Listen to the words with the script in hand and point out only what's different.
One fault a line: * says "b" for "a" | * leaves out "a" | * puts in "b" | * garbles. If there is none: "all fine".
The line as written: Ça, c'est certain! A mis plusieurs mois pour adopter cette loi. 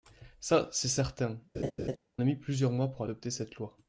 all fine